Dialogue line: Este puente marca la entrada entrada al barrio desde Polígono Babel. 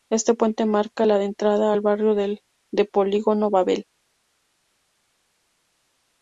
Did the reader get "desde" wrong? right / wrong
wrong